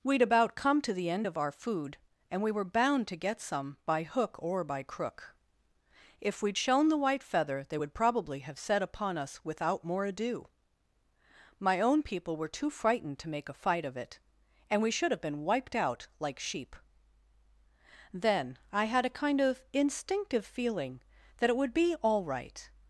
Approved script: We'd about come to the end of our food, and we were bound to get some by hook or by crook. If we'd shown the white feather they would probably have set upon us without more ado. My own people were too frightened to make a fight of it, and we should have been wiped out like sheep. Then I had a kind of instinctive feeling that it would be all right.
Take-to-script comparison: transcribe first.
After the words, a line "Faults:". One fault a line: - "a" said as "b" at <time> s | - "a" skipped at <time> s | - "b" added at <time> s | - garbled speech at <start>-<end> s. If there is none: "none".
We'd about come to the end of our food, and we were bound to get some by hook or by crook. If we'd shown the white feather they would probably have set upon us without more ado. My own people were too frightened to make a fight of it, and we should have been wiped out like sheep. Then I had a kind of instinctive feeling that it would be all right.
Faults:
none